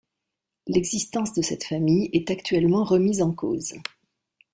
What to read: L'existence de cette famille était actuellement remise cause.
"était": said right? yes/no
no